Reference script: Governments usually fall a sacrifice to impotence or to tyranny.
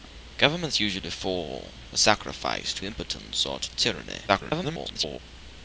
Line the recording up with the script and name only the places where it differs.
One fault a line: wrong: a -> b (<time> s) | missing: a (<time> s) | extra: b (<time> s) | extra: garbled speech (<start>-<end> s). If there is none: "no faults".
extra: garbled speech (4.3-5.2 s)